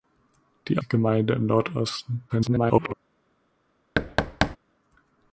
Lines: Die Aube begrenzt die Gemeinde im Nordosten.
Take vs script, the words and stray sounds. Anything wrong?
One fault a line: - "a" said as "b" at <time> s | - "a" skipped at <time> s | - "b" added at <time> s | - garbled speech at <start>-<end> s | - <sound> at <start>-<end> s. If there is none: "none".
- "Aube begrenzt" skipped at 0.8 s
- garbled speech at 2.3-2.9 s
- thud at 4.0-4.6 s